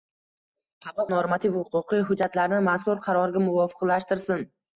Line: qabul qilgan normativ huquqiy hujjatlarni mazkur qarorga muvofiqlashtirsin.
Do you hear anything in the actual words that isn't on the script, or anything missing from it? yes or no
yes